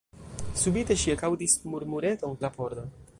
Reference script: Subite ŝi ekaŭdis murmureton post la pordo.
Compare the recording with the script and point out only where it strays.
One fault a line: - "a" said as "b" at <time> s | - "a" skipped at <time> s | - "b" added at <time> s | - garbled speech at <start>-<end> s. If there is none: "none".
- "post" skipped at 2.4 s